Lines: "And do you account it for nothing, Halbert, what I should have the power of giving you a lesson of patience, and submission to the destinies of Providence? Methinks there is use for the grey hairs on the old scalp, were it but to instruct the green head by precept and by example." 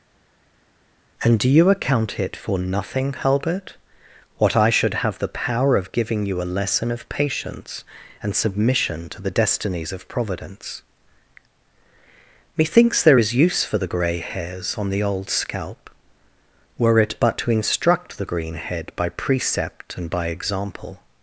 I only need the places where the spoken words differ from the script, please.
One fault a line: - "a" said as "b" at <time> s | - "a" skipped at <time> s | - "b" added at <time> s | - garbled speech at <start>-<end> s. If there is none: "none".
none